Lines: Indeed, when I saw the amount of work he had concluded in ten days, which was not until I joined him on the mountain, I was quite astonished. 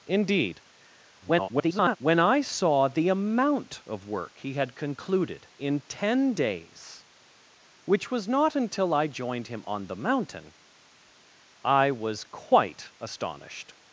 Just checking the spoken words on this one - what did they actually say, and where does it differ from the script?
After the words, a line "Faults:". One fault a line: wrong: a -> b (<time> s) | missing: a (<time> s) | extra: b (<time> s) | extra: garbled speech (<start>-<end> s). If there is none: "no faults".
Indeed, [garbled] when I saw the amount of work he had concluded in ten days, which was not until I joined him on the mountain, I was quite astonished.
Faults:
extra: garbled speech (1.2-2.0 s)